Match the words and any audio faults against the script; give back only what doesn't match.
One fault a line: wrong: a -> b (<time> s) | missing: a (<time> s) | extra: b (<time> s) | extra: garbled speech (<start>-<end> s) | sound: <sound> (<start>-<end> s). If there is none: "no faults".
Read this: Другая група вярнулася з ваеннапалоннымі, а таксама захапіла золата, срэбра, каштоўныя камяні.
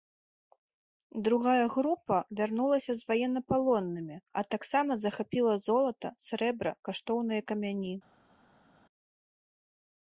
no faults